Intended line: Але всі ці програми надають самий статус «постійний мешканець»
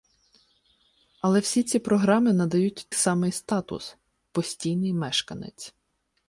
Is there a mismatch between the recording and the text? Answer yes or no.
no